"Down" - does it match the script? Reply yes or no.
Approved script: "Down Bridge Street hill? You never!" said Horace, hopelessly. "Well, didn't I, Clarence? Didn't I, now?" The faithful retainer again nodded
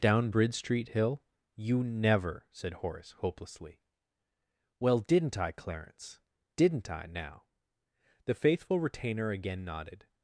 yes